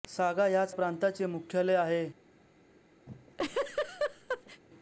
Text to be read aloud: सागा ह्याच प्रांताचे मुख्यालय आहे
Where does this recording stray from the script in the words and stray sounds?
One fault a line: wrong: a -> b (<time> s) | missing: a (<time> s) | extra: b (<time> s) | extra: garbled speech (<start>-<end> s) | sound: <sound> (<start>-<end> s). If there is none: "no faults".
sound: laugh (3.1-4.6 s)